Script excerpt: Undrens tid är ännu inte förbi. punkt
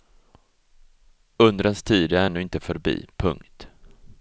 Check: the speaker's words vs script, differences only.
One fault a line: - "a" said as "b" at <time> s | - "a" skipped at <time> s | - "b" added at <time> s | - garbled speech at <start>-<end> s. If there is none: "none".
none